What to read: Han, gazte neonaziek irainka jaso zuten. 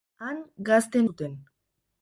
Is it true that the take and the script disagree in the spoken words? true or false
true